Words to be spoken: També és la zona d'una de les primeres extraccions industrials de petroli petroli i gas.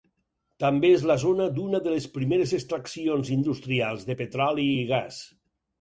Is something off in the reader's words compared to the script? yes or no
yes